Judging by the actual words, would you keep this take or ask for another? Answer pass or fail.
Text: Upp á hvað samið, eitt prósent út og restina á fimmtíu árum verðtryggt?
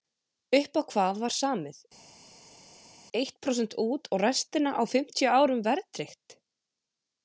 fail